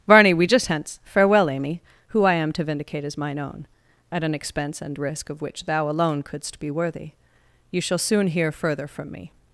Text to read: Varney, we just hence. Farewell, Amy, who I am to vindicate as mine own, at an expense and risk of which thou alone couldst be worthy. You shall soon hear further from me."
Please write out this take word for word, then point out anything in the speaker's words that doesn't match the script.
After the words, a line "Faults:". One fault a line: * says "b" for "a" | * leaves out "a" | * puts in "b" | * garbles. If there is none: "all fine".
Varney, we just hence. Farewell, Amy, who I am to vindicate as mine own, at an expense and risk of which thou alone couldst be worthy. You shall soon hear further from me."
Faults:
all fine